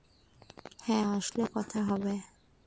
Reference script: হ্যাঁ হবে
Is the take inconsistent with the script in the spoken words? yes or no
yes